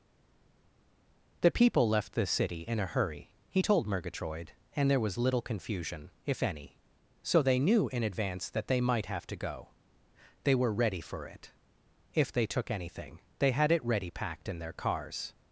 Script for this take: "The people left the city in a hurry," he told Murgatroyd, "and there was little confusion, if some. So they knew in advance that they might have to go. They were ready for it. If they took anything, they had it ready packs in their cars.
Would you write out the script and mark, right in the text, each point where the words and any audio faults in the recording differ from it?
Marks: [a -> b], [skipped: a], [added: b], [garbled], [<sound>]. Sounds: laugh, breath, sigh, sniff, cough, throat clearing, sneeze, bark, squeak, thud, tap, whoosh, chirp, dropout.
"The people left the city in a hurry," he told Murgatroyd, "and there was little confusion, if [some. -> any] So they knew in advance that they might have to go. They were ready for it. If they took anything, they had it ready [packs -> packed] in their cars.